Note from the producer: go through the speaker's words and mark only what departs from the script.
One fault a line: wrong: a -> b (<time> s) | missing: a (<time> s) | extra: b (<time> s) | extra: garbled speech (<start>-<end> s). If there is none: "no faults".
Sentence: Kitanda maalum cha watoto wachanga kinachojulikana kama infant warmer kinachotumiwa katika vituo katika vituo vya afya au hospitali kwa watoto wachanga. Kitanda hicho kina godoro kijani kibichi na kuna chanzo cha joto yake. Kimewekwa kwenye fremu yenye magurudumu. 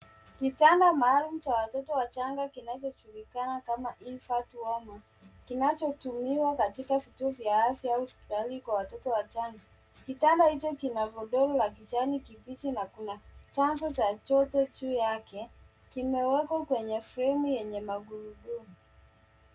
missing: katika vituo (7.3 s)
extra: la (11.6 s)
extra: juu (14.8 s)